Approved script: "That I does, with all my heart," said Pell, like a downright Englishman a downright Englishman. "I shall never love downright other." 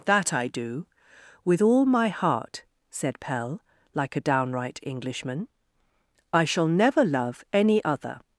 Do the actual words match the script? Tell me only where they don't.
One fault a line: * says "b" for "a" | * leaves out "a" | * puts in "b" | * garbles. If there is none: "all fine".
* says "do" for "does"
* leaves out "a downright Englishman"
* says "any" for "downright"